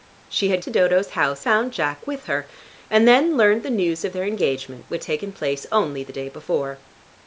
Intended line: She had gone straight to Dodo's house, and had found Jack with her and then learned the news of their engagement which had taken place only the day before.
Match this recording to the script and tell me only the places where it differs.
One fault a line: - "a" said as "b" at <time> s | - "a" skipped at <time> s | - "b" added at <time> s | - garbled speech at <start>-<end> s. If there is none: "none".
- "gone straight" skipped at 0.6 s
- "and had" skipped at 1.4 s
- "had" skipped at 5.0 s